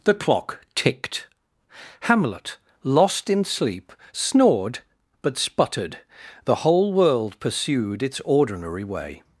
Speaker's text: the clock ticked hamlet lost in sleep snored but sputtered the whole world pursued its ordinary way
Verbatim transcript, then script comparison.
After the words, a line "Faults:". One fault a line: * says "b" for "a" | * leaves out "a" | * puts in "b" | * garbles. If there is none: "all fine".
the clock ticked hamlet lost in sleep snored but sputtered the whole world pursued its ordinary way
Faults:
all fine